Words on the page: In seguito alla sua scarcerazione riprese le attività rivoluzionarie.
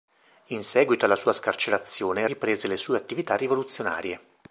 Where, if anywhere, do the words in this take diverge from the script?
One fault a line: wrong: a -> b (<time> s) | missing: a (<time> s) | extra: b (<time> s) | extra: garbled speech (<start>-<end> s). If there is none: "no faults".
extra: sue (2.8 s)